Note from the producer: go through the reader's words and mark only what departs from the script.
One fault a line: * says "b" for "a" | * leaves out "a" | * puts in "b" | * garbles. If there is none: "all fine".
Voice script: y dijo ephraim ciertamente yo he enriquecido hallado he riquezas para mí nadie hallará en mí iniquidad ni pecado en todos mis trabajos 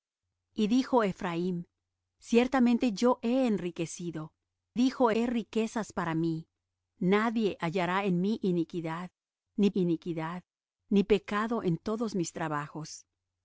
* says "dijo" for "hallado"
* puts in "iniquidad ni"